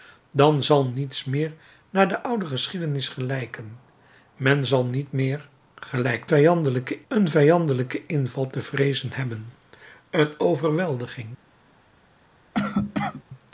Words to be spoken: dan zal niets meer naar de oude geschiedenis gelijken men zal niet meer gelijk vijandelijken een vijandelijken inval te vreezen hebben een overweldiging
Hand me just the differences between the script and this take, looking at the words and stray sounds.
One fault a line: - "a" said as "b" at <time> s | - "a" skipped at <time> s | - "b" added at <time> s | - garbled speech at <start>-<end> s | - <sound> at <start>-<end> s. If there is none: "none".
- cough at 12.5-13.2 s